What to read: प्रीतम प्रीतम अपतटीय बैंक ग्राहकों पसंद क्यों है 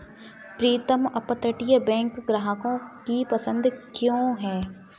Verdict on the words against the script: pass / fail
fail